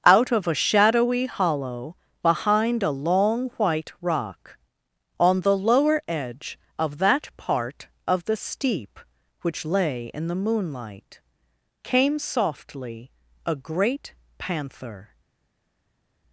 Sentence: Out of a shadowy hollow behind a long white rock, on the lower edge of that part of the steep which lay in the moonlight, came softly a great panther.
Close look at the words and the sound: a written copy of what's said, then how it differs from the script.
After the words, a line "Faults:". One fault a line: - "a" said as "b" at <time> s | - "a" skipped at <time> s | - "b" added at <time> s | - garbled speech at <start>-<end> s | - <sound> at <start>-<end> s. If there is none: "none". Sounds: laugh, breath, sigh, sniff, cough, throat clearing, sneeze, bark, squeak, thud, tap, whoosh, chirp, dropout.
Out of a shadowy hollow behind a long white rock, on the lower edge of that part of the steep which lay in the moonlight, came softly a great panther.
Faults:
none